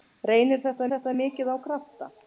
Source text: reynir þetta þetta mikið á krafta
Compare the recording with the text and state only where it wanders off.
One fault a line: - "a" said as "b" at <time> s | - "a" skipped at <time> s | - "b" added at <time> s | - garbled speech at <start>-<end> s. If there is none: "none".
none